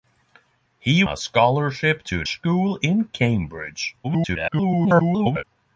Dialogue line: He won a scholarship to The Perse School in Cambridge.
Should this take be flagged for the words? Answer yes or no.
yes